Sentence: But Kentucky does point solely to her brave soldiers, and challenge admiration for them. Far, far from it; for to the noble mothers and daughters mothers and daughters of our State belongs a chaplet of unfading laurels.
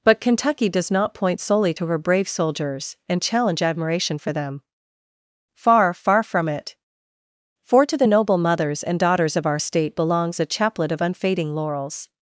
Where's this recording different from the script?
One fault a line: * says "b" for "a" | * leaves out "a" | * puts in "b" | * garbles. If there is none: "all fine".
* puts in "not"
* leaves out "mothers and daughters"